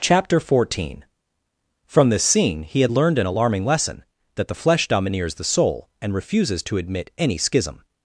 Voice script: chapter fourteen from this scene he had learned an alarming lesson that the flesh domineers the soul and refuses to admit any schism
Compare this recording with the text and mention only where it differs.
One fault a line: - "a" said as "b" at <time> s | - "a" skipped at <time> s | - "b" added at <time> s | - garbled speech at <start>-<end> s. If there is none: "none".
none